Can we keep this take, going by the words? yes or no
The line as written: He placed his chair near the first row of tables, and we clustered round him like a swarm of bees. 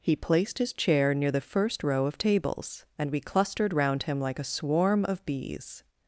yes